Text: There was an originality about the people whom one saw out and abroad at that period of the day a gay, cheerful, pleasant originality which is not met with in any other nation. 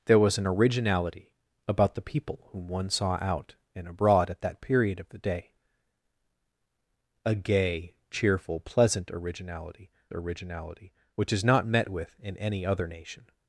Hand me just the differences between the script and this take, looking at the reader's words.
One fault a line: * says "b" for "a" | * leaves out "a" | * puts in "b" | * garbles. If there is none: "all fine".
* puts in "originality"